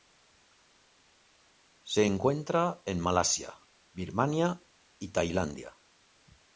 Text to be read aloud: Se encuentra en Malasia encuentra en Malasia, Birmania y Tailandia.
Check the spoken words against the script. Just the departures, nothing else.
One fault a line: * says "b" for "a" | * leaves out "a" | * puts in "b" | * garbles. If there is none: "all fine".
* leaves out "encuentra en Malasia"